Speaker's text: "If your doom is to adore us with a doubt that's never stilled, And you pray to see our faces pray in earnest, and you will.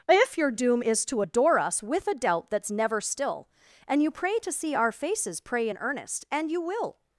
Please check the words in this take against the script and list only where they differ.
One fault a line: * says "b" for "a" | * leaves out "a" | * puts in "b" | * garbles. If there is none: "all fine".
* says "still" for "stilled"